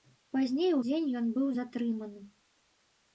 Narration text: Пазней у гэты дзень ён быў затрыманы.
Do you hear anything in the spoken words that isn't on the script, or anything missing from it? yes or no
yes